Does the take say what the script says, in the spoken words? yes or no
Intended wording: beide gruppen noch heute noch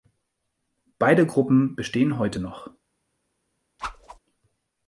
no